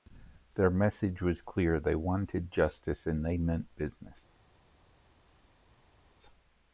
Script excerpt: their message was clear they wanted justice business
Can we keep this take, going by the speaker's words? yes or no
no